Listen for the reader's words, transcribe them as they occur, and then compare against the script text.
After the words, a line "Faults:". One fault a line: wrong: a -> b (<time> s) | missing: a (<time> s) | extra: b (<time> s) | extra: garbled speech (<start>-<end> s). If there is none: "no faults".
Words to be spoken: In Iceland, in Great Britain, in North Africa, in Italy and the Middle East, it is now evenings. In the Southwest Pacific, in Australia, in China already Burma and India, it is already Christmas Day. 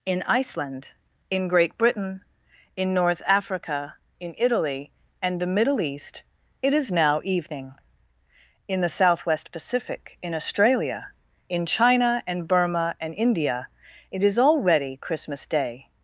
In Iceland, in Great Britain, in North Africa, in Italy and the Middle East, it is now evening. In the Southwest Pacific, in Australia, in China and Burma and India, it is already Christmas Day.
Faults:
wrong: evenings -> evening (7.2 s)
wrong: already -> and (12.3 s)